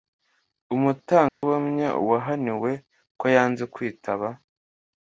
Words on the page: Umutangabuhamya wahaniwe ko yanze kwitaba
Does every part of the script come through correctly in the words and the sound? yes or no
no